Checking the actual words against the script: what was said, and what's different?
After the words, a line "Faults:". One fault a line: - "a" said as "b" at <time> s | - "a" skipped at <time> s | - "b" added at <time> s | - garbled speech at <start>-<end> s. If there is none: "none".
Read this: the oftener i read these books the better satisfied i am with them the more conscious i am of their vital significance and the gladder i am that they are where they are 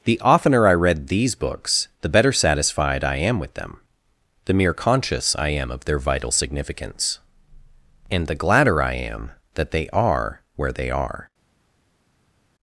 the oftener i read these books the better satisfied i am with them the mere conscious i am of their vital significance and the gladder i am that they are where they are
Faults:
- "more" said as "mere" at 4.5 s